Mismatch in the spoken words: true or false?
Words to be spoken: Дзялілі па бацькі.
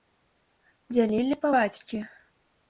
false